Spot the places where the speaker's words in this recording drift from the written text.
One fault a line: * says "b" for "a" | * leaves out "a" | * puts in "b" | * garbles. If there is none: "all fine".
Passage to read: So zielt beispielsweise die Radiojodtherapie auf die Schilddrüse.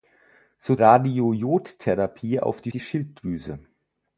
* says "Radiojodtherapie auf" for "zielt beispielsweise"
* leaves out "Radiojodtherapie auf"